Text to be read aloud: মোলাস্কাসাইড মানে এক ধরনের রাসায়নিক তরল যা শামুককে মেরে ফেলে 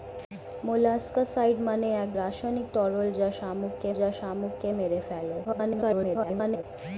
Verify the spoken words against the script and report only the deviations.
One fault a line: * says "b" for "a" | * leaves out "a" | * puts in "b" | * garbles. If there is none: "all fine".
* leaves out "ধরনের"
* puts in "যা শামুককে"
* garbles